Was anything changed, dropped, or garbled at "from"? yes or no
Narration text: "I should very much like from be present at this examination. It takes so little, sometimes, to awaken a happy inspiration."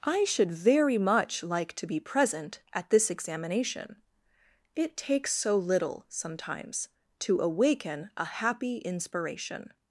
yes